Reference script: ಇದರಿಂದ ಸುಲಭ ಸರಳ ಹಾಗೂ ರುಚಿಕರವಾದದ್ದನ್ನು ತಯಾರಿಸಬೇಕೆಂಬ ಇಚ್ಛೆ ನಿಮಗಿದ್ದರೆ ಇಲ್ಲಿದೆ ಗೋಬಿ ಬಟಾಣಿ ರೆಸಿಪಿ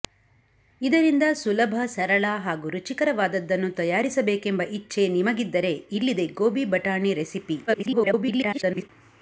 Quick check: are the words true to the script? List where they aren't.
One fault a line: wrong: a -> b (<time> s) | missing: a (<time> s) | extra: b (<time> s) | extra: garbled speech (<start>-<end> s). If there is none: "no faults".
extra: garbled speech (7.7-8.9 s)